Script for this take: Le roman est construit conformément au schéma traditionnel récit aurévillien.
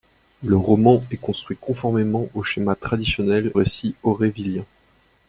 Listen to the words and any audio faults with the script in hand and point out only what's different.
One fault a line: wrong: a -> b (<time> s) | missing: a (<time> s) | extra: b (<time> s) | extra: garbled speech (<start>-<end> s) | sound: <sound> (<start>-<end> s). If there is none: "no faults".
no faults